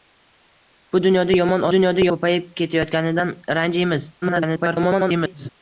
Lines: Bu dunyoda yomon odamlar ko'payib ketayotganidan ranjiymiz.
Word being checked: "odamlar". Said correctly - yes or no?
no